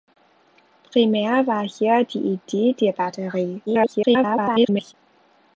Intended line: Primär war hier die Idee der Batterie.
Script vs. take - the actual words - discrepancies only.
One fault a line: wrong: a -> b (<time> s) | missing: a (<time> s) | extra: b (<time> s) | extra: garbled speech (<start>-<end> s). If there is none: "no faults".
extra: garbled speech (3.7-4.9 s)